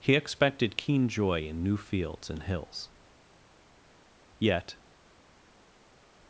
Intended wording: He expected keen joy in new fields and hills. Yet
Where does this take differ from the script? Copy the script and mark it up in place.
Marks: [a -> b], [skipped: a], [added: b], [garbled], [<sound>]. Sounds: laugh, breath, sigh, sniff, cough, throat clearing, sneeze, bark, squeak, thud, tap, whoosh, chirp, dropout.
He expected keen joy in new fields and hills. Yet